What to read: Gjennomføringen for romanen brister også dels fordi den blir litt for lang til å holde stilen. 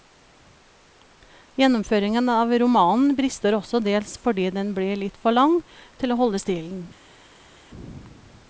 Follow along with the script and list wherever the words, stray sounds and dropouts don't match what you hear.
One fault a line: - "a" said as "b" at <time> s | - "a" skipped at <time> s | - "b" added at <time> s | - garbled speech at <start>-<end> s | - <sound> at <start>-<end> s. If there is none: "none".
- "for" said as "av" at 2.4 s